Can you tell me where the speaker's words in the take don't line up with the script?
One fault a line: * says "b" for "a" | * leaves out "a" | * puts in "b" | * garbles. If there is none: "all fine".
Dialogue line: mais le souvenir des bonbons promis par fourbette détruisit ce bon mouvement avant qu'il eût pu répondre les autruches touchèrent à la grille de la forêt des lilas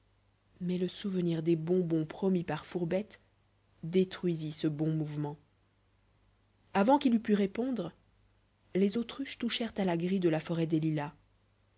all fine